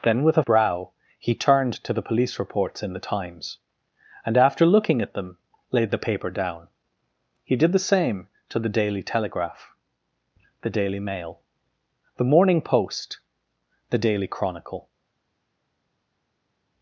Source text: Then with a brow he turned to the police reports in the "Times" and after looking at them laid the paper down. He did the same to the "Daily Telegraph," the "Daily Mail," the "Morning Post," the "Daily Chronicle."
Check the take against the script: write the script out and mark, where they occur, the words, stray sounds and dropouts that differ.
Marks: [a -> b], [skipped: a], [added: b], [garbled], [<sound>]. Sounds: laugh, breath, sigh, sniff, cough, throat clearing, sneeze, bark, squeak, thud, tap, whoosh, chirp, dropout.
Then with a brow he turned to the police reports in the "Times" and after looking at them laid the paper down. He did the same to the "Daily Telegraph," the "Daily Mail," the "Morning Post," the "Daily Chronicle."